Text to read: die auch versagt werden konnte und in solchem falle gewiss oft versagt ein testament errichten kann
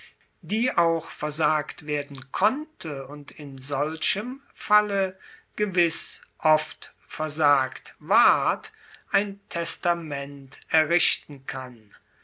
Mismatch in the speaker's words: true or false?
true